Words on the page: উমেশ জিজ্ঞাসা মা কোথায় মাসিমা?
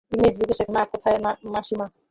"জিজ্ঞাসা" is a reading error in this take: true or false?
false